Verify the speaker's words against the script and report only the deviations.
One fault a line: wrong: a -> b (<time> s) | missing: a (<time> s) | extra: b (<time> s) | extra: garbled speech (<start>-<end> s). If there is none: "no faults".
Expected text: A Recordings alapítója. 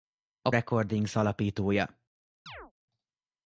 no faults